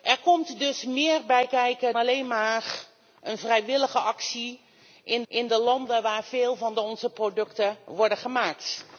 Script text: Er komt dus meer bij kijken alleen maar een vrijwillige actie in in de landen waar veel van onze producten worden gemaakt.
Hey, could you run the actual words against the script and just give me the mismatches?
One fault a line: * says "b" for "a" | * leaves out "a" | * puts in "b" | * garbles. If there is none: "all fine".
all fine